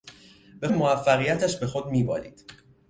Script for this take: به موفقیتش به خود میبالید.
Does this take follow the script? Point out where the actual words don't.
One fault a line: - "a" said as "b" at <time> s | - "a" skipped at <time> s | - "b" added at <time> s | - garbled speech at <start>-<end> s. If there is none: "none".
none